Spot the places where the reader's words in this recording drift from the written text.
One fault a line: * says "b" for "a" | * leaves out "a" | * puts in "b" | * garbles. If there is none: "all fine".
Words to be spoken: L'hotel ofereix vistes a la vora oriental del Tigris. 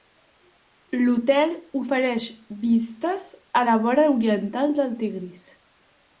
all fine